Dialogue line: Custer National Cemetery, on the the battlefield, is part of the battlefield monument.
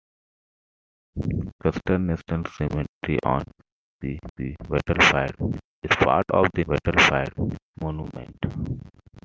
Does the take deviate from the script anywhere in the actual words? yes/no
no